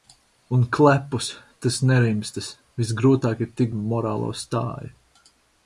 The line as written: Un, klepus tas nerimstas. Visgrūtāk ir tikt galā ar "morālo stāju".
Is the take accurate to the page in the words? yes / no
no